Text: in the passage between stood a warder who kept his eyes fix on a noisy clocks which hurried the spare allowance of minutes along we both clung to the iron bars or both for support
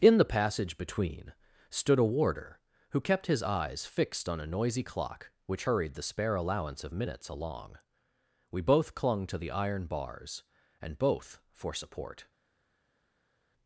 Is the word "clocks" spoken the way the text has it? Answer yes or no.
no